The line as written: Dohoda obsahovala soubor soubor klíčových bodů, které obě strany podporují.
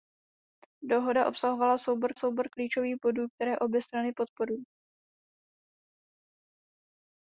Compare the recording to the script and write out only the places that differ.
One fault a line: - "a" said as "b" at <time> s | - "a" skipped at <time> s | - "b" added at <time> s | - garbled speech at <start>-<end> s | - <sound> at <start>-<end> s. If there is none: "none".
none